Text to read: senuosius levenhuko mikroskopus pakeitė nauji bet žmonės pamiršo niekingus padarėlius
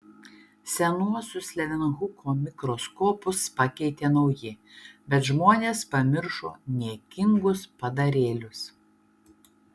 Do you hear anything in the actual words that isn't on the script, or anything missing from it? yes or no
no